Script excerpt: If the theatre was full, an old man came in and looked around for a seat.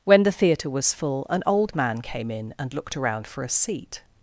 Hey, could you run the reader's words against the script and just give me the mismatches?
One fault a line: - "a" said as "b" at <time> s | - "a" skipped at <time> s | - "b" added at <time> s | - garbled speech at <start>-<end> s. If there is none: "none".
- "If" said as "When" at 0.0 s